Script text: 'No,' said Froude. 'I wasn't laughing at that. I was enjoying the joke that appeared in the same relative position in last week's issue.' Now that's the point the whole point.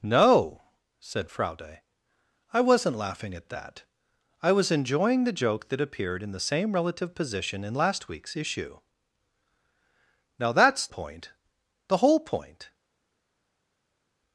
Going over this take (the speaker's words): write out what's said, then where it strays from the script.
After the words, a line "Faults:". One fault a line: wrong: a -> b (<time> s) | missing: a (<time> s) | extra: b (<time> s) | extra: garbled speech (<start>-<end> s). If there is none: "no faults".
'No,' said Froude. 'I wasn't laughing at that. I was enjoying the joke that appeared in the same relative position in last week's issue.' Now that's point the whole point.
Faults:
missing: the (10.9 s)